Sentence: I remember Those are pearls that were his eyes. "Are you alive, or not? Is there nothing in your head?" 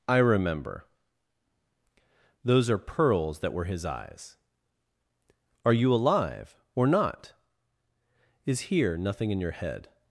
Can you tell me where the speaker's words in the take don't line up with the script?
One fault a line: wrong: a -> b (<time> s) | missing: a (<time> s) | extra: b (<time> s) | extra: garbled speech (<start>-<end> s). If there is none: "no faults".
wrong: there -> here (8.7 s)